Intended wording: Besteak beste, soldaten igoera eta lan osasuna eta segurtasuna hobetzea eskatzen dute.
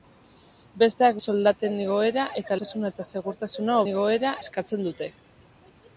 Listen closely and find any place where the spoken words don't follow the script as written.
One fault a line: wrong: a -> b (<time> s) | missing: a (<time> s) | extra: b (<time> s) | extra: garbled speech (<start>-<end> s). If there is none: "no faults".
missing: beste (1.2 s)
missing: lan (2.6 s)
wrong: hobetzea -> igoera (3.9 s)